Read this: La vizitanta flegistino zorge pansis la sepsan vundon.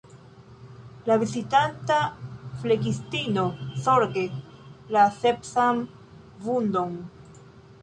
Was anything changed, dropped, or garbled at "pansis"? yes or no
yes